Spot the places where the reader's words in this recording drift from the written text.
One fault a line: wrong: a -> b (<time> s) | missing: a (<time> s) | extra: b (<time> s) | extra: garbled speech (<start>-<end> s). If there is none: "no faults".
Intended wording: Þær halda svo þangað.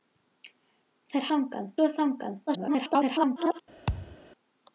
wrong: halda -> þangað (1.3 s)
extra: garbled speech (2.5-3.6 s)